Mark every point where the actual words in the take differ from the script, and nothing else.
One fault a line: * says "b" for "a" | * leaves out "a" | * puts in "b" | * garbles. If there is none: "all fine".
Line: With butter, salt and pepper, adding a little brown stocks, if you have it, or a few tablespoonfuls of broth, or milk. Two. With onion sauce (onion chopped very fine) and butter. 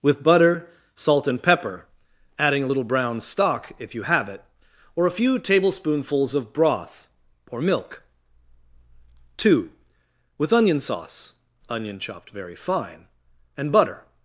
* says "stock" for "stocks"